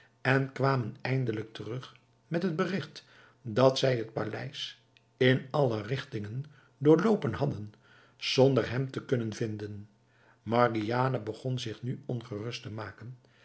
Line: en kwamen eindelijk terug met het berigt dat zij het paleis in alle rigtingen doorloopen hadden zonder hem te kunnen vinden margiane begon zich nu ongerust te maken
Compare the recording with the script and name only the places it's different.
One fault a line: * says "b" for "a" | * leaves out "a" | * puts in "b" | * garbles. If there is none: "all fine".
all fine